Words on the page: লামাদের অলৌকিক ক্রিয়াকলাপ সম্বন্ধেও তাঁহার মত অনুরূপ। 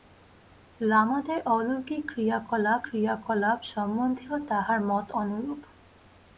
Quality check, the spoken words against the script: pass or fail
fail